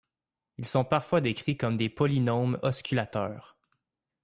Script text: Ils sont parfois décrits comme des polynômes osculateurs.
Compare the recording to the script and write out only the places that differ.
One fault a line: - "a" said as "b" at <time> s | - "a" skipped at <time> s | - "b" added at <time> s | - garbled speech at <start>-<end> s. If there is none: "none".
none